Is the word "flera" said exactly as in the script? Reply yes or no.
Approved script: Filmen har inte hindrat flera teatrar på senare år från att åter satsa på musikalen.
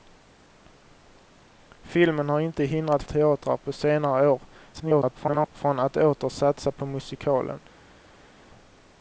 no